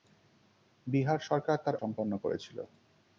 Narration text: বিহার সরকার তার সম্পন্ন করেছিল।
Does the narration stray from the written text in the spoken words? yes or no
no